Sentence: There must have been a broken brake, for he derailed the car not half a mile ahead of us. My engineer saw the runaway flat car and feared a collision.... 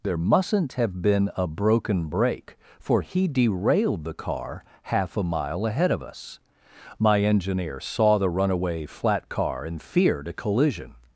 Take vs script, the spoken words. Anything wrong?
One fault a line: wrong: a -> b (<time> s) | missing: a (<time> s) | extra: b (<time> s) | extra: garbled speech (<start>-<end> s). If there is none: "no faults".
wrong: must -> mustn't (0.2 s)
missing: not (4.6 s)